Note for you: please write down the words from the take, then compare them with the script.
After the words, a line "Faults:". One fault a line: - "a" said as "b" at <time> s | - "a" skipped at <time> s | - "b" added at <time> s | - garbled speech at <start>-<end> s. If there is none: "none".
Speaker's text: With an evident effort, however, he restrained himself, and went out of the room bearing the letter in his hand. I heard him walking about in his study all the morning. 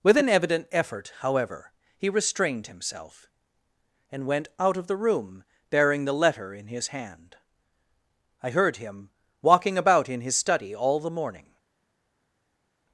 With an evident effort, however, he restrained himself, and went out of the room bearing the letter in his hand. I heard him walking about in his study all the morning.
Faults:
none